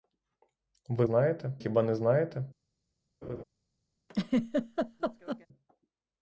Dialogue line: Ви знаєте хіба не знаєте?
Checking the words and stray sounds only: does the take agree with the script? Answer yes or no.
no